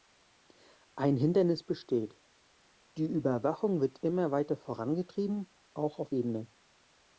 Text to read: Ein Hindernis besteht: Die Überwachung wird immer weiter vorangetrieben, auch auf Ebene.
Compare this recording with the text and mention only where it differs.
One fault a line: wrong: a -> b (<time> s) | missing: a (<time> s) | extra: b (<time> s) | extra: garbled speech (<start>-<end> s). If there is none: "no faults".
no faults